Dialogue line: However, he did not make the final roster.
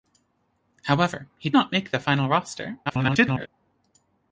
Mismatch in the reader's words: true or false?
true